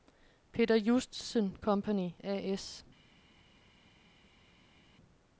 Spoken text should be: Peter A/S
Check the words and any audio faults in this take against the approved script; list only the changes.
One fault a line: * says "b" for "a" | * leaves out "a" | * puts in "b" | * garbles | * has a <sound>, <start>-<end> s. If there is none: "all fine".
* puts in "Justesen Company"